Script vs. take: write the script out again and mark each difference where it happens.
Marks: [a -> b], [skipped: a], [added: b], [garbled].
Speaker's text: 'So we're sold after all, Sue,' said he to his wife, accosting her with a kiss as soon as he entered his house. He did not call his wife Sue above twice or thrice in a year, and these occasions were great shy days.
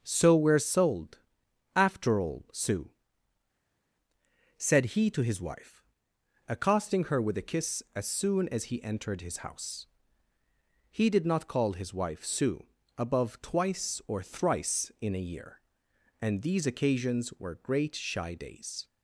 'So we're sold after all, Sue,' said he to his wife, accosting her with a kiss as soon as he entered his house. He did not call his wife Sue above twice or thrice in a year, and these occasions were great shy days.